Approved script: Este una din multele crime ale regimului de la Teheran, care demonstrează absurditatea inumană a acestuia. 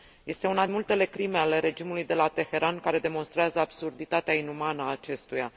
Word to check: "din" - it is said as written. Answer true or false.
false